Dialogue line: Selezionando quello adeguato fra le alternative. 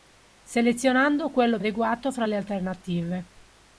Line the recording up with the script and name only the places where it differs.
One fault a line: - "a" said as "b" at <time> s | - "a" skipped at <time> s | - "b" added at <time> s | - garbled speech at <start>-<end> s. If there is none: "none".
none